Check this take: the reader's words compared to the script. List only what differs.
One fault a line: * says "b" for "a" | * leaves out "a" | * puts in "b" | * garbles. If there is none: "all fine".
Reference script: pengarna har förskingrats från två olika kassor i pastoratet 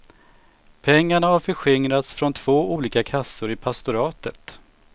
all fine